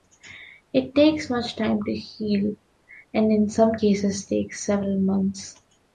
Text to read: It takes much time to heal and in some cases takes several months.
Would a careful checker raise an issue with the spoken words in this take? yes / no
no